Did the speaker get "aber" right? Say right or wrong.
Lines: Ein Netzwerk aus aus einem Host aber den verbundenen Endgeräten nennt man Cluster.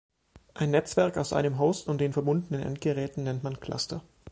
wrong